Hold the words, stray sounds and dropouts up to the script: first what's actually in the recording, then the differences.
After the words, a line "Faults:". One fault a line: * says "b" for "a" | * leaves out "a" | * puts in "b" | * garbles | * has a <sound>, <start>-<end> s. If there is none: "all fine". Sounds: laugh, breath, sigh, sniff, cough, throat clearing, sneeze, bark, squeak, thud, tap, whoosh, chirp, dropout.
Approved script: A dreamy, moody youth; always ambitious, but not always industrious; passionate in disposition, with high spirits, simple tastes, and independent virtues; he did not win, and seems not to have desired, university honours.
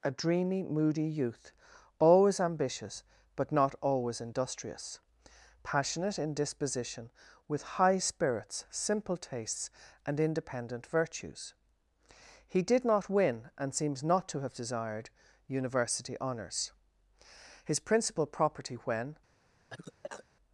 A dreamy, moody youth; always ambitious, but not always industrious; passionate in disposition, with high spirits, simple tastes, and independent virtues; he did not win, and seems not to have desired, university honours. His principal property when
Faults:
* puts in "His principal property when"
* has a cough, 19.7-20.3 s